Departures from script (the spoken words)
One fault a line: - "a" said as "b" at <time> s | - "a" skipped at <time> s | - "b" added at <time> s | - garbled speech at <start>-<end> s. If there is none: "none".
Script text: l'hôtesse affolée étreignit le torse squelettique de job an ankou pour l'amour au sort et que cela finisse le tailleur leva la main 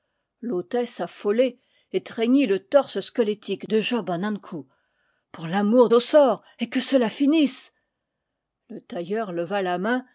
none